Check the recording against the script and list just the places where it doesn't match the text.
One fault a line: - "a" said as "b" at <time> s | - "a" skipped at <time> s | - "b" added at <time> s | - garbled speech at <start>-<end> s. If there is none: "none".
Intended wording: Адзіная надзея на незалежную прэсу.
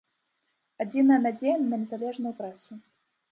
none